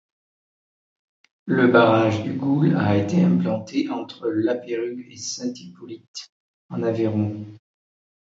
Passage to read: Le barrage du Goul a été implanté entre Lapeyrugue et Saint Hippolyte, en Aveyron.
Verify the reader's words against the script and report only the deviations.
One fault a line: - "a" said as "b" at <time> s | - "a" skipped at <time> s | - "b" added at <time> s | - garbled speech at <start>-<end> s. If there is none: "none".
none